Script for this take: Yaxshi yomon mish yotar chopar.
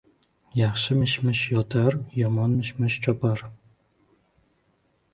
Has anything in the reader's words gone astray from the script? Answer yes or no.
yes